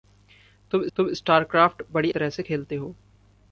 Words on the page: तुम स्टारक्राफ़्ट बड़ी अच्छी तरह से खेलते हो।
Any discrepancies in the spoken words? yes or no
yes